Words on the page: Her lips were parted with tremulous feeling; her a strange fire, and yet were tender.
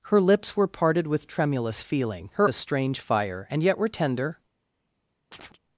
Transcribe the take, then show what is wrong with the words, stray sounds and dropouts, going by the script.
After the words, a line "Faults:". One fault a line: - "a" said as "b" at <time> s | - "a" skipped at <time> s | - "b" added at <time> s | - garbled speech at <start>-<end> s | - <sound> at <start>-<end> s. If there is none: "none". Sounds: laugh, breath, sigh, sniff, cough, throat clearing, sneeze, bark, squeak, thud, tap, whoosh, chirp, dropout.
Her lips were parted with tremulous feeling; her a strange fire, and yet were tender.
Faults:
- chirp at 5.3-5.6 s